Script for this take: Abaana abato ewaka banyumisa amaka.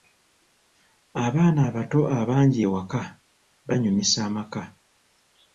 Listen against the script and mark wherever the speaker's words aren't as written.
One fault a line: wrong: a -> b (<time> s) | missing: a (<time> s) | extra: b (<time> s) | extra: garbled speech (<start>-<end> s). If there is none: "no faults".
extra: abangi (2.2 s)